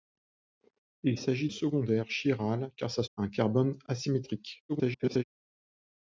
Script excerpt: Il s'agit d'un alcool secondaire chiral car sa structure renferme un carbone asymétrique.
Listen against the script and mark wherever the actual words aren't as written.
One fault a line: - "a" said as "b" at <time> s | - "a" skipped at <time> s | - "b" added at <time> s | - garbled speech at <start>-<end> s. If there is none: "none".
- "d'un alcool" skipped at 1.5 s
- "structure renferme" skipped at 3.0 s
- garbled speech at 4.7-5.2 s